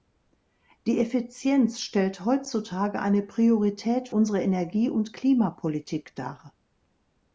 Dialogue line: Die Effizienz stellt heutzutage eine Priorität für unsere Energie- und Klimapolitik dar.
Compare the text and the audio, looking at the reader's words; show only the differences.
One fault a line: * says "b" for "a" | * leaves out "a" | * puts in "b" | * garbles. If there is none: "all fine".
* leaves out "für"